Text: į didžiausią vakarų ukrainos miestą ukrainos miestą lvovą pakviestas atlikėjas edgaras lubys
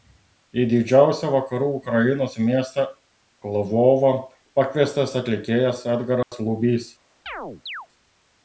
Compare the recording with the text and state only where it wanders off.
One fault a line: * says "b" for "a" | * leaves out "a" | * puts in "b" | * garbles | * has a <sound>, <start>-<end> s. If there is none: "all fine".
* leaves out "ukrainos miestą"
* has a dropout, 6.2-6.3 s
* has a chirp, 7.3-7.9 s